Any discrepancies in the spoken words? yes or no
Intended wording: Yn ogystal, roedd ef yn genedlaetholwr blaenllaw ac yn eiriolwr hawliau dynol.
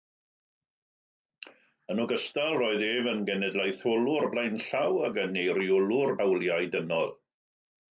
no